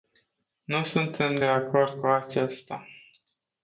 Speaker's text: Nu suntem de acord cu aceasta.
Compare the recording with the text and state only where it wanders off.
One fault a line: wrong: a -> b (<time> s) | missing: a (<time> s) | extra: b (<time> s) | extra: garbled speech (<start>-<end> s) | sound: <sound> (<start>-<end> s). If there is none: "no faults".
no faults